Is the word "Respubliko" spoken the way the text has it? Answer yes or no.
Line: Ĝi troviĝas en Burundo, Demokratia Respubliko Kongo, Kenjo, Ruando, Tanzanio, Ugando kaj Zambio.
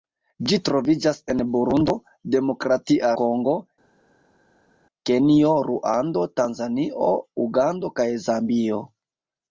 no